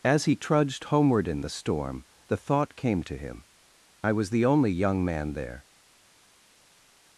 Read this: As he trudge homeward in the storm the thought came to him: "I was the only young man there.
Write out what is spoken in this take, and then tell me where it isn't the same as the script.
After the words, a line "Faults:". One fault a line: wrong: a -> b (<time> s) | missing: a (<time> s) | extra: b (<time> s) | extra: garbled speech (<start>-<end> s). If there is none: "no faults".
As he trudged homeward in the storm the thought came to him: "I was the only young man there.
Faults:
wrong: trudge -> trudged (0.3 s)